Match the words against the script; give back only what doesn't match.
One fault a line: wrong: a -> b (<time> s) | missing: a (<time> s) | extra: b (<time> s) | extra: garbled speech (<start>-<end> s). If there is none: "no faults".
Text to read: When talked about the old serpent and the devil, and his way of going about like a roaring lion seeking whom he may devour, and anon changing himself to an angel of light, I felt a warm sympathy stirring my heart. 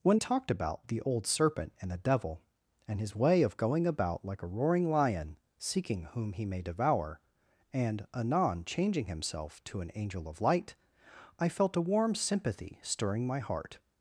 no faults